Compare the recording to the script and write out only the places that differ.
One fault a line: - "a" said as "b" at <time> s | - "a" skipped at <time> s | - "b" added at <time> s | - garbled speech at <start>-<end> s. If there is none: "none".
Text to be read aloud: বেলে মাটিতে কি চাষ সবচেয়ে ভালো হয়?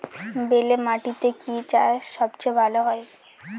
none